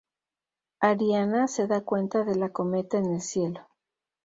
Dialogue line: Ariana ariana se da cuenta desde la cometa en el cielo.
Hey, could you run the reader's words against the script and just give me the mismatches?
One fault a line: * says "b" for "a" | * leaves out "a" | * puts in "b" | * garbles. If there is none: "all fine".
* leaves out "ariana"
* says "de" for "desde"